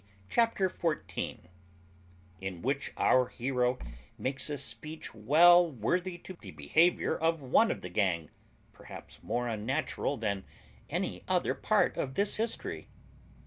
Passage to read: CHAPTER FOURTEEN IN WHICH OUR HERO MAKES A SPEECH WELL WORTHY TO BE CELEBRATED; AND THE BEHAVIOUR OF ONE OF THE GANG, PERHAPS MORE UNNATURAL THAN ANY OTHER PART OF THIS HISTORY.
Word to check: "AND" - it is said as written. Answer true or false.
false